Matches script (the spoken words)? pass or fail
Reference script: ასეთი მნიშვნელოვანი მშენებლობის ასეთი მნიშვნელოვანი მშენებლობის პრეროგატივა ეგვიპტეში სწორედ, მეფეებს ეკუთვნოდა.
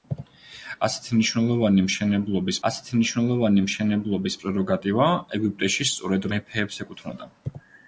pass